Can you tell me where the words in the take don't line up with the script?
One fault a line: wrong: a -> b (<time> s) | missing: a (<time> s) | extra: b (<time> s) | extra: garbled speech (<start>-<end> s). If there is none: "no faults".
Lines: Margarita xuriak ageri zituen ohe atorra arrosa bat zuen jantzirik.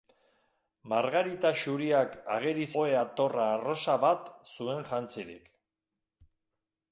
missing: zituen (2.6 s)